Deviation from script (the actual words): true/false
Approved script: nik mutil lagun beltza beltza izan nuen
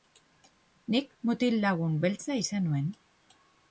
true